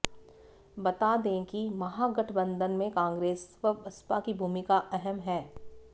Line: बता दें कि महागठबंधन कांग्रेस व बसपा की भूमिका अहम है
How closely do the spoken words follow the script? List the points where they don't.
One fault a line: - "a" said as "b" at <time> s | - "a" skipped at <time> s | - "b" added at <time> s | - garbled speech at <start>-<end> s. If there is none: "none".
- "में" added at 2.7 s